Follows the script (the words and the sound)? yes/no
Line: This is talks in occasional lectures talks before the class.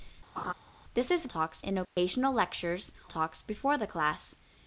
no